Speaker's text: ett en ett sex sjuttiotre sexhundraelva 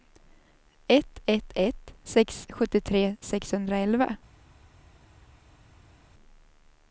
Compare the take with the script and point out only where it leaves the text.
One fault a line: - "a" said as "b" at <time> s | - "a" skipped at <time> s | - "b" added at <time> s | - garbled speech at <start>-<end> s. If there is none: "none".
- "en" said as "ett" at 1.2 s